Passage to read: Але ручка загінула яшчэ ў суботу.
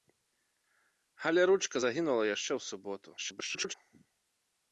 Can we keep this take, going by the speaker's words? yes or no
no